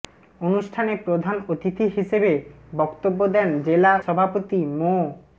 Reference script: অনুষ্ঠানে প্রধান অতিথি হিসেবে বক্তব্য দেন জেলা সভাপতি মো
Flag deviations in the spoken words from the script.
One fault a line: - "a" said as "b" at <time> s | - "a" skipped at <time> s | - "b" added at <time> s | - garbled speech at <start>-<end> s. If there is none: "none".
none